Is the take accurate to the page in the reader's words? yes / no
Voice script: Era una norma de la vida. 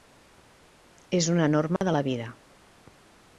no